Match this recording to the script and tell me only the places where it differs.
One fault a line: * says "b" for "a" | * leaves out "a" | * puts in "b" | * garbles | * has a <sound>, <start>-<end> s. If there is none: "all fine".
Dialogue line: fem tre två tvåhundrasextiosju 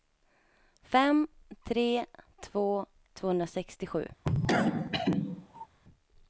* has a cough, 4.2-5.7 s